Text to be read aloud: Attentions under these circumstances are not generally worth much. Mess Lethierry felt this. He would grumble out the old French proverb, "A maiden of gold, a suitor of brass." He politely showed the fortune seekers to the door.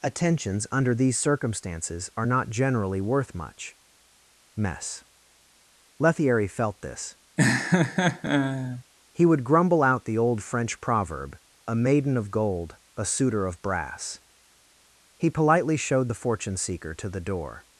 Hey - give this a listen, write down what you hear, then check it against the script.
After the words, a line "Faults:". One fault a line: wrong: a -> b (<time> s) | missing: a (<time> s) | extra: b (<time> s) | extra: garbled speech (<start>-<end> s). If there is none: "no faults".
Attentions under these circumstances are not generally worth much. Mess Lethierry felt this. He would grumble out the old French proverb, "A maiden of gold, a suitor of brass." He politely showed the fortune seeker to the door.
Faults:
wrong: seekers -> seeker (16.6 s)